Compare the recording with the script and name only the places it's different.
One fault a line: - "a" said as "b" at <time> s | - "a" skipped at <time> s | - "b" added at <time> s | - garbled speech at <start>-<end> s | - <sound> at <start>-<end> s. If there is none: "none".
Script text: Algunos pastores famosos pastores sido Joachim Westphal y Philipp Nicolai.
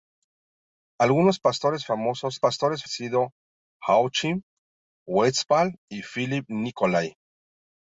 none